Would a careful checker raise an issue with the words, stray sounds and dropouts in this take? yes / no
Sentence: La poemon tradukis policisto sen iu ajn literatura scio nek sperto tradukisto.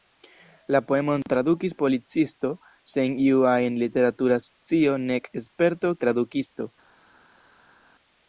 no